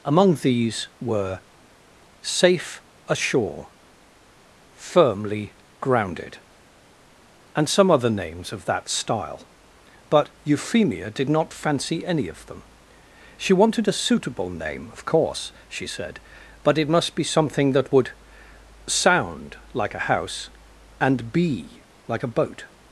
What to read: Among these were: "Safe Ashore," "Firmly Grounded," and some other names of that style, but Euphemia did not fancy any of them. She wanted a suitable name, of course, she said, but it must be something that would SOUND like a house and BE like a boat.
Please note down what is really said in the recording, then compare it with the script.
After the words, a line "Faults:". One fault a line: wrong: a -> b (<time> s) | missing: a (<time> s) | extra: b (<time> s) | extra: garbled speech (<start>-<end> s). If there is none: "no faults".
Among these were: "Safe Ashore," "Firmly Grounded," and some other names of that style, but Euphemia did not fancy any of them. She wanted a suitable name, of course, she said, but it must be something that would SOUND like a house and BE like a boat.
Faults:
no faults